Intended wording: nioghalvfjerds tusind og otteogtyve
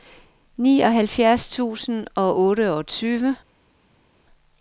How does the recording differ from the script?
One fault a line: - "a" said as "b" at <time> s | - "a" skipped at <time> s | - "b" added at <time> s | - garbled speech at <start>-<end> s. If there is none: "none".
none